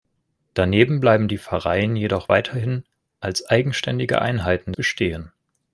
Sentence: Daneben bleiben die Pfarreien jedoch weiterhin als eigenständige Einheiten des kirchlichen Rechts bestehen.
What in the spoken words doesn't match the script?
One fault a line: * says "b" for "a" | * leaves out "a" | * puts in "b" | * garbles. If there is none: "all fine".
* leaves out "des kirchlichen Rechts"